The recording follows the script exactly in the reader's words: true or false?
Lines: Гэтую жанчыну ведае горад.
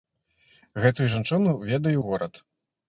true